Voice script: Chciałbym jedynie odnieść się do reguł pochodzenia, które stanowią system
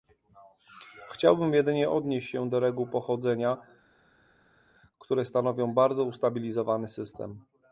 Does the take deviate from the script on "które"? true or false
false